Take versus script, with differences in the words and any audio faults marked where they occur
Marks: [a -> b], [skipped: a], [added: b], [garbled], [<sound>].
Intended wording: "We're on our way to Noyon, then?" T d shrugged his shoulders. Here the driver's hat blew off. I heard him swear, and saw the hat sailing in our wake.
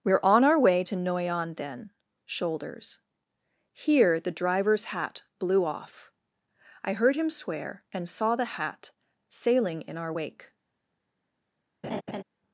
"We're on our way to Noyon, then?" [skipped: T d shrugged his] shoulders. Here the driver's hat blew off. I heard him swear, and saw the hat sailing in our wake. [laugh]